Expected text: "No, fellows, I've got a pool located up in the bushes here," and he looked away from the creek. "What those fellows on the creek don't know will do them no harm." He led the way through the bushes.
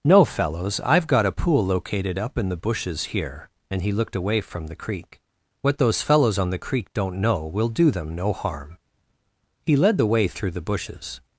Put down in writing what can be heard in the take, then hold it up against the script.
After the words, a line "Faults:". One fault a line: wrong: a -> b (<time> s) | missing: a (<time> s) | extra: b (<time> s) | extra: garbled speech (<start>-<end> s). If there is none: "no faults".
"No, fellows, I've got a pool located up in the bushes here," and he looked away from the creek. "What those fellows on the creek don't know will do them no harm." He led the way through the bushes.
Faults:
no faults